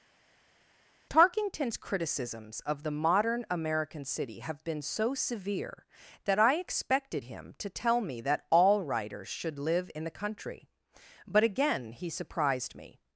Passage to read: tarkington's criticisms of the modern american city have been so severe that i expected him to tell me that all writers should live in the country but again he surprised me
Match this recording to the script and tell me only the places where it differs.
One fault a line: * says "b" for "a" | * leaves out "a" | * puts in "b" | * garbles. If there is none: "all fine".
all fine